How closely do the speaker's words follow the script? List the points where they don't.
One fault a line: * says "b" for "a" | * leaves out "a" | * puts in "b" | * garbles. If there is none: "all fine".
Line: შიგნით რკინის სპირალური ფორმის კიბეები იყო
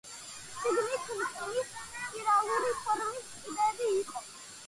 all fine